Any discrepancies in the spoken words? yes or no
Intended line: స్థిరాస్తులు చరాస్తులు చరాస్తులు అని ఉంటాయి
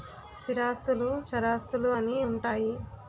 yes